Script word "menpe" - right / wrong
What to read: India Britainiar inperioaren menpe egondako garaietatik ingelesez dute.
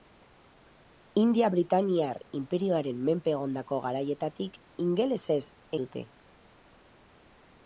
right